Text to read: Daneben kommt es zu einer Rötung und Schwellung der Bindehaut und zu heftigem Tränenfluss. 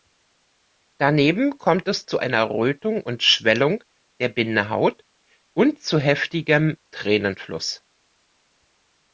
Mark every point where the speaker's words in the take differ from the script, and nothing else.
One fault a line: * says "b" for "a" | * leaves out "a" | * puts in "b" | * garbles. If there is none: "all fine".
all fine